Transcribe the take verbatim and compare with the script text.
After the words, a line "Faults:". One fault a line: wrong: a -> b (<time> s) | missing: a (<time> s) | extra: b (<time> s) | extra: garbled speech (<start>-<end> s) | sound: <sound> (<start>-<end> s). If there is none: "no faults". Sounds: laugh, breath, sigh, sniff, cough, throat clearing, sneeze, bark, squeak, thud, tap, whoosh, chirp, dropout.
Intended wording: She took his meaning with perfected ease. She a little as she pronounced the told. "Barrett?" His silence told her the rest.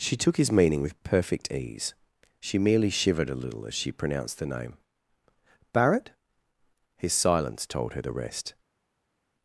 She took his meaning with perfect ease. She merely shivered a little as she pronounced the name. "Barrett?" His silence told her the rest.
Faults:
wrong: perfected -> perfect (1.0 s)
extra: merely shivered (2.6 s)
wrong: told -> name (4.5 s)